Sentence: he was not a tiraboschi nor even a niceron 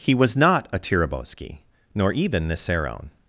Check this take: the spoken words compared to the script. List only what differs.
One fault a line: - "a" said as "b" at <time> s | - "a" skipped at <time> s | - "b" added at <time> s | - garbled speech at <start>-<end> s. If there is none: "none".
- "a" skipped at 2.5 s